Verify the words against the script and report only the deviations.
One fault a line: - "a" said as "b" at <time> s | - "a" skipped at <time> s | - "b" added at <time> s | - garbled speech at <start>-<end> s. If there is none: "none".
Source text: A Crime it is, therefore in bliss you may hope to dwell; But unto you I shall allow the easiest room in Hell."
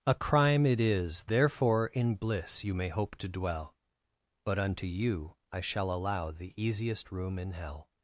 none